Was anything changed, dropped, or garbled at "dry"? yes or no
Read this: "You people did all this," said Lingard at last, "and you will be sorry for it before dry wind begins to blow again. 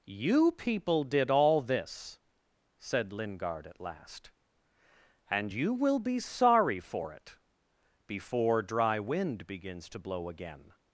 no